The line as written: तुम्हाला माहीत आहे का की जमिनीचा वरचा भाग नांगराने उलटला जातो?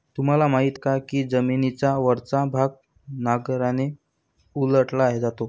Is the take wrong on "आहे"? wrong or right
wrong